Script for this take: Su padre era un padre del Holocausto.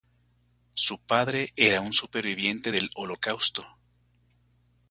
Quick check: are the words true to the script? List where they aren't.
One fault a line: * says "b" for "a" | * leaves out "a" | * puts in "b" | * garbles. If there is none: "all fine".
* says "superviviente" for "padre"